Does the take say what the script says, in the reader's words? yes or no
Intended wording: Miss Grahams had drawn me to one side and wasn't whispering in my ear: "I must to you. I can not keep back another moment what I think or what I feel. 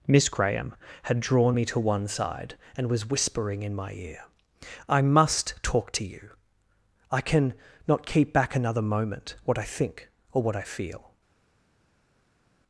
no